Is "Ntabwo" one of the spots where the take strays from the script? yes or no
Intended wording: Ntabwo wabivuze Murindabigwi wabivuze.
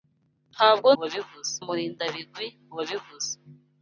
no